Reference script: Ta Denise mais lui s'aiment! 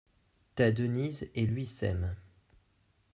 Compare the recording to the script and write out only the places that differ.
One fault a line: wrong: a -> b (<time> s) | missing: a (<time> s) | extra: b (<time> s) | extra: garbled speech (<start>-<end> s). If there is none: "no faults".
wrong: mais -> et (1.3 s)